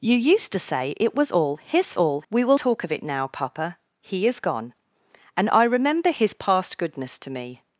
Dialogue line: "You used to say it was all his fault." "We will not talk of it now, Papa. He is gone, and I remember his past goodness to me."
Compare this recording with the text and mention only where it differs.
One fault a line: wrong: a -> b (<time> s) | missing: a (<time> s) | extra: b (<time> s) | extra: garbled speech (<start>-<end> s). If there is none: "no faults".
wrong: fault -> all (2.0 s)
missing: not (2.6 s)